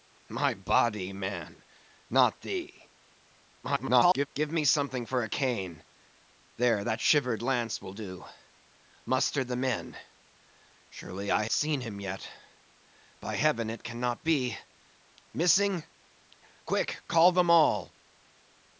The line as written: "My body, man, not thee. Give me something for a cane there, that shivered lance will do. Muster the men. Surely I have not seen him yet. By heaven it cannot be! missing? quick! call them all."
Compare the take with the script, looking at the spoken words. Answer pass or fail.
fail